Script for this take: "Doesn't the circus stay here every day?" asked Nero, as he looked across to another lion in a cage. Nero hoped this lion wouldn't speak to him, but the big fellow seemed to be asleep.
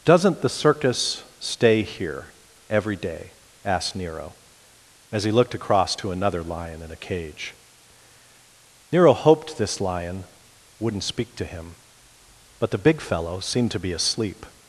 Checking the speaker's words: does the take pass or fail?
pass